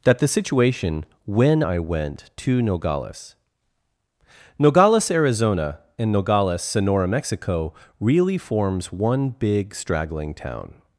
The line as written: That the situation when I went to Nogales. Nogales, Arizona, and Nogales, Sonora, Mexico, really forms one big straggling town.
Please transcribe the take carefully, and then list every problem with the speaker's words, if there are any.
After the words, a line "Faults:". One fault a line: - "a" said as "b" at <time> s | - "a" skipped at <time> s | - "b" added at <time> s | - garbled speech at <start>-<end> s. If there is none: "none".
That the situation when I went to Nogales. Nogales, Arizona, and Nogales, Sonora, Mexico, really forms one big straggling town.
Faults:
none